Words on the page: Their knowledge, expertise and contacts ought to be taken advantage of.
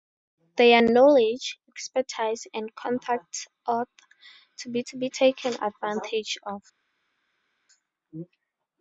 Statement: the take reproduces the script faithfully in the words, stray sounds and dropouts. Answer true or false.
false